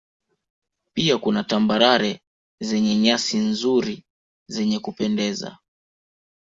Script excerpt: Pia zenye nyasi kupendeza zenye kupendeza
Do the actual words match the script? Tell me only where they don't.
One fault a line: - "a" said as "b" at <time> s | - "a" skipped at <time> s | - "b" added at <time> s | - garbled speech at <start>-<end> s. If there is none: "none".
- "kuna Tambarare" added at 1.2 s
- "kupendeza" said as "nzuri" at 3.4 s